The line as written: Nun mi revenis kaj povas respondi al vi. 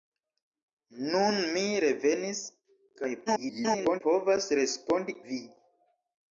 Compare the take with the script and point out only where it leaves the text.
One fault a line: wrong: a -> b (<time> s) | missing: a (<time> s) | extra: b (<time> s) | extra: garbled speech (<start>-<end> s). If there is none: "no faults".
extra: garbled speech (3.3-4.0 s)
missing: al (5.2 s)